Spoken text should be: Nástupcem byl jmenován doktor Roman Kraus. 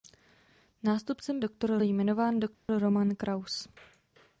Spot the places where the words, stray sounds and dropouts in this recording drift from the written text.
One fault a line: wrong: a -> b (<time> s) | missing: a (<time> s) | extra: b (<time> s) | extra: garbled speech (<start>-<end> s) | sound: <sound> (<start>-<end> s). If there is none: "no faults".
wrong: byl -> doktor (1.4 s)
sound: dropout (2.5-2.7 s)